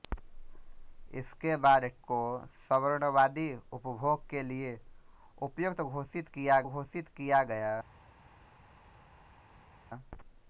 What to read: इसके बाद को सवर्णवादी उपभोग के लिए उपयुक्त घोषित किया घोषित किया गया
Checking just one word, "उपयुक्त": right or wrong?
right